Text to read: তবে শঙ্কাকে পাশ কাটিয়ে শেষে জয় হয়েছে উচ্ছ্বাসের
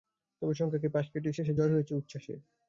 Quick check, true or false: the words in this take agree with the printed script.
true